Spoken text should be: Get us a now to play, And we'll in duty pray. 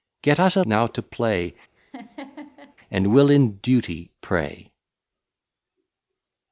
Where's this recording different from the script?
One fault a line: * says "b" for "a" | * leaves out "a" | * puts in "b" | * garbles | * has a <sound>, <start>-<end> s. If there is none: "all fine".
* has a laugh, 1.8-2.8 s